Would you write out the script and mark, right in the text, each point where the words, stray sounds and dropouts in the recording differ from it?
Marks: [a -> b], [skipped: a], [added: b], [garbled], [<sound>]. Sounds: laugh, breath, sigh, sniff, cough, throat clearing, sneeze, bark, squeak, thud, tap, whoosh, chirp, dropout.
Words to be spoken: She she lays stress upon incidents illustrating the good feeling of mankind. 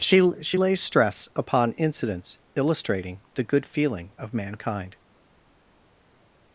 She she lays stress upon incidents illustrating the good feeling of mankind.